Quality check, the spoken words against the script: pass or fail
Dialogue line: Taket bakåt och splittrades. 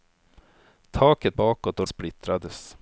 pass